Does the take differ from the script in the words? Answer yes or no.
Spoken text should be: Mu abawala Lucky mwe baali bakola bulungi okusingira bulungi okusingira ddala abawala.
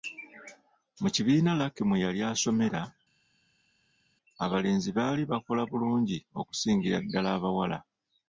yes